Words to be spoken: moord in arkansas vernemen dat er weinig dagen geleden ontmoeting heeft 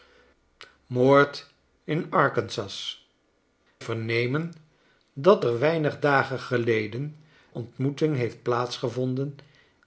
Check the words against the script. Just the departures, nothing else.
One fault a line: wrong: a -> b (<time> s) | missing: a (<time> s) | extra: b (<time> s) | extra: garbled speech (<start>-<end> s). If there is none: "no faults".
no faults